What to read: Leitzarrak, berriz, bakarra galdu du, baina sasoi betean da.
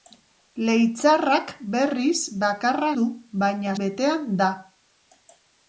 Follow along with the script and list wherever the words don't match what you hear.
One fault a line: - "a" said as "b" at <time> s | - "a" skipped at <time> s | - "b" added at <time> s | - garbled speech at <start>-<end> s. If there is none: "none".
- "galdu" skipped at 2.9 s
- "sasoi" skipped at 3.7 s